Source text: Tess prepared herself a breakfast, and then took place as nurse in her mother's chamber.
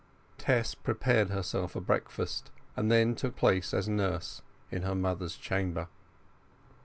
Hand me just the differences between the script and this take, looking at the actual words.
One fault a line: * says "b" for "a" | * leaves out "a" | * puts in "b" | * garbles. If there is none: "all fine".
all fine